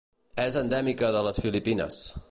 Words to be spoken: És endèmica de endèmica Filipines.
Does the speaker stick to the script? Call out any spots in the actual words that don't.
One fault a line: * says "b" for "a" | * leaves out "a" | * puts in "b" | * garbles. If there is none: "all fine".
* says "les" for "endèmica"